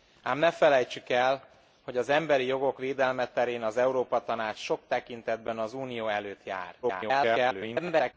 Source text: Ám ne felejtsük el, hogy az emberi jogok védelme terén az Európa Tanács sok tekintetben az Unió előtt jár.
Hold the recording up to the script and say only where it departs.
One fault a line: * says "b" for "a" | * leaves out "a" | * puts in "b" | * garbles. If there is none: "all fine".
* garbles